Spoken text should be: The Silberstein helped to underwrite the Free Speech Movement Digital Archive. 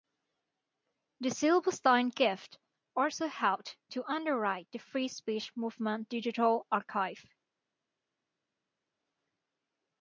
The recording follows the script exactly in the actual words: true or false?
false